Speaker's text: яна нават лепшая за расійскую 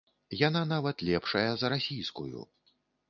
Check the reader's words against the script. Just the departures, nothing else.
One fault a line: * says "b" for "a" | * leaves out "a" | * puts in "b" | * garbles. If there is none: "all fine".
all fine